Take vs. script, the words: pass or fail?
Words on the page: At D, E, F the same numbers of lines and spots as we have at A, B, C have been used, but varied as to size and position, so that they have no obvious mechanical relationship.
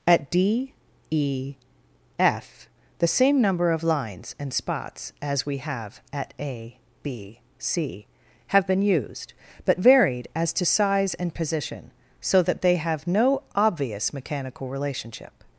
fail